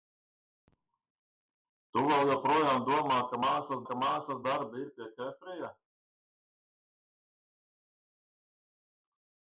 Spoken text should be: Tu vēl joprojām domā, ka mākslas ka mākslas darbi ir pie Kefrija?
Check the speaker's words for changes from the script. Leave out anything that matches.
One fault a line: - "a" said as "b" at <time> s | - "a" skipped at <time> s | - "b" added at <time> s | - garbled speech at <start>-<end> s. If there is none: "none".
none